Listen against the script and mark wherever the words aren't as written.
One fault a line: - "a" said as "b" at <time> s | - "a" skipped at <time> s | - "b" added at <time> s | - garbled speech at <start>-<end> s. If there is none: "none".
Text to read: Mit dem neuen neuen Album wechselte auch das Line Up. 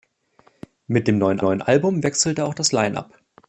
none